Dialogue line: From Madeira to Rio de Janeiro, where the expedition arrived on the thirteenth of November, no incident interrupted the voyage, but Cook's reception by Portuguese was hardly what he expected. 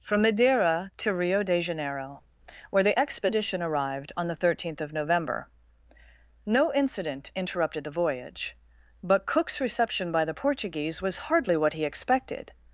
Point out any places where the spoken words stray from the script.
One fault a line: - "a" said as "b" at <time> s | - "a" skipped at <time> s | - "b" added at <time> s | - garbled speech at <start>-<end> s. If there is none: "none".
- "the" added at 10.2 s